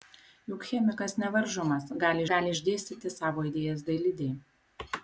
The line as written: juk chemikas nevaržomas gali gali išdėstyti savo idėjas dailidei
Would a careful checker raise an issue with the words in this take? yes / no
no